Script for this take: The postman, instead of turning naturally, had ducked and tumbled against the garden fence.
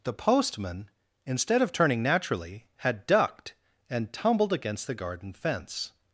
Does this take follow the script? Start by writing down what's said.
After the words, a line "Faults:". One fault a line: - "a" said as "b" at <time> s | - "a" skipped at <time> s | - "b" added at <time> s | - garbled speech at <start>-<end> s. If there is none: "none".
The postman, instead of turning naturally, had ducked and tumbled against the garden fence.
Faults:
none